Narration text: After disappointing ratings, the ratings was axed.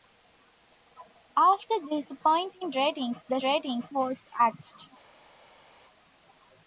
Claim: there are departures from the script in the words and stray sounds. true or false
false